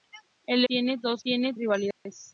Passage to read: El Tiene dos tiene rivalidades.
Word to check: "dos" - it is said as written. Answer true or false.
true